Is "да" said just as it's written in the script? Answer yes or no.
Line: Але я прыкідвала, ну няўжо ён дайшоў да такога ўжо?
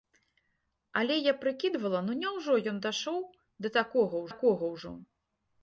yes